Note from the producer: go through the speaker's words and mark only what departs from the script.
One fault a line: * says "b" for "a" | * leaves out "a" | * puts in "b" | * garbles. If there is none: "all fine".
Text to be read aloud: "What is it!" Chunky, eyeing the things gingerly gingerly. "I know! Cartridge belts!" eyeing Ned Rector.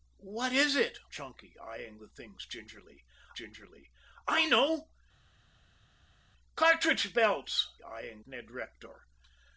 all fine